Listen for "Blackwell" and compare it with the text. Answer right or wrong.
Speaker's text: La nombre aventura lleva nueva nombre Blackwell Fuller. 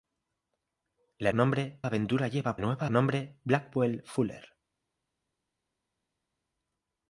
right